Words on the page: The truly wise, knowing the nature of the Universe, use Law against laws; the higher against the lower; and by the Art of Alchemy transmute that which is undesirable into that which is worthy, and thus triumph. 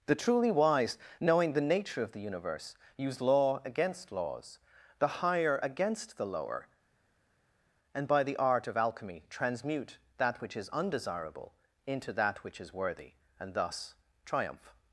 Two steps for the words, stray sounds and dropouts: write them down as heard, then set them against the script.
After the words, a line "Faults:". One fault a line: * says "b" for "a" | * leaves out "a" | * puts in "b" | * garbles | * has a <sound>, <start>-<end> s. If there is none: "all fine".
The truly wise, knowing the nature of the Universe, use Law against laws; the higher against the lower; and by the Art of Alchemy transmute that which is undesirable into that which is worthy, and thus triumph.
Faults:
all fine